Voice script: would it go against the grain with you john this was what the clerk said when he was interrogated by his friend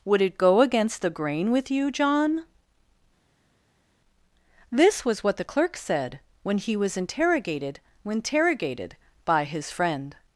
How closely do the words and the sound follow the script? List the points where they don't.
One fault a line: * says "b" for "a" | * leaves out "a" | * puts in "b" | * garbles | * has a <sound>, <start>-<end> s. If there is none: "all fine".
* puts in "interrogated"